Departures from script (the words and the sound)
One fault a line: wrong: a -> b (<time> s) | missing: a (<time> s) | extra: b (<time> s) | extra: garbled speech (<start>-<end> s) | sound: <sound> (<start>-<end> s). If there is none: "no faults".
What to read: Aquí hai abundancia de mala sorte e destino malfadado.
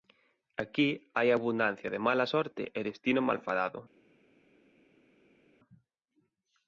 no faults